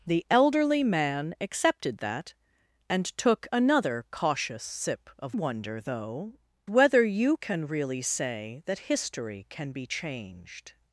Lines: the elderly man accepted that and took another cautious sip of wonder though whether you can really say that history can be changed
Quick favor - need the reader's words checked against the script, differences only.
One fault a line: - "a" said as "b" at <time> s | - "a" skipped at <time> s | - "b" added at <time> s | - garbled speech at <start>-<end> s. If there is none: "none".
none